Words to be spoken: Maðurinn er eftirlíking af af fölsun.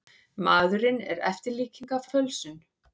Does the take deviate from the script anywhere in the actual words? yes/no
no